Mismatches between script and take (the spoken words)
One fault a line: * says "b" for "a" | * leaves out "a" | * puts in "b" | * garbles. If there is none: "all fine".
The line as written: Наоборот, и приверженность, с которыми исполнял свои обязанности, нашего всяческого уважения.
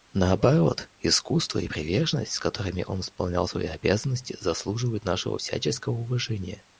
* puts in "искусство"
* puts in "он"
* puts in "заслуживают"